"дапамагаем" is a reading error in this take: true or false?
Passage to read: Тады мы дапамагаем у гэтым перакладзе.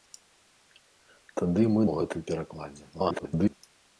true